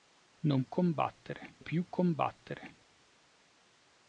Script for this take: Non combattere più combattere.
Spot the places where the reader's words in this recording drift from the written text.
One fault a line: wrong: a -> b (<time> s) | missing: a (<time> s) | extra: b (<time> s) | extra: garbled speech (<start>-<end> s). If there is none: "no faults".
no faults